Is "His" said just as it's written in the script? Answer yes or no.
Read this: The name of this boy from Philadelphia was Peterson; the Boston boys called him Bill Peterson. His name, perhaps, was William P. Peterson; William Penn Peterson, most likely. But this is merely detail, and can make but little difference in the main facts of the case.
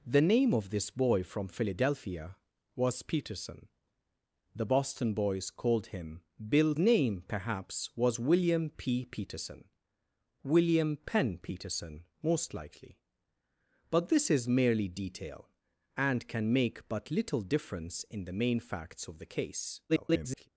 no